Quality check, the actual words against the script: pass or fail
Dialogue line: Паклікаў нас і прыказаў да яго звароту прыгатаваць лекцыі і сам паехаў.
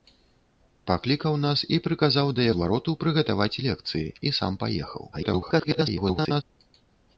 fail